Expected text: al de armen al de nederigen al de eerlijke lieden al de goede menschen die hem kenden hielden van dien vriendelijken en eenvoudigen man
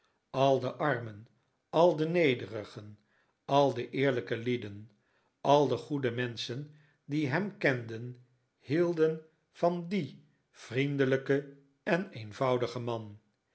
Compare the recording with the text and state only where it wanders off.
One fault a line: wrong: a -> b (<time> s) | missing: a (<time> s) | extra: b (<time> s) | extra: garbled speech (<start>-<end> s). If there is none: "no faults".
no faults